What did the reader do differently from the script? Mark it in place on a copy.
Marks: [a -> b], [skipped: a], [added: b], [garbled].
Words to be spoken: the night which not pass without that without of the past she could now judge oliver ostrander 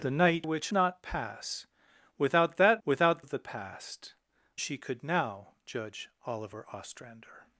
the night which not pass without that without of the past she could now judge oliver ostrander